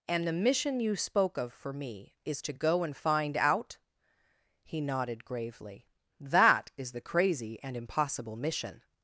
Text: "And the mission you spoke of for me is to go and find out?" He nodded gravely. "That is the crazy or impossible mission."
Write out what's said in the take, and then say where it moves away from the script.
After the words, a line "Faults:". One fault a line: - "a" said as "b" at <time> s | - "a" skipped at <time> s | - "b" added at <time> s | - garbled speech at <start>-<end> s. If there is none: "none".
"And the mission you spoke of for me is to go and find out?" He nodded gravely. "That is the crazy and impossible mission."
Faults:
- "or" said as "and" at 7.6 s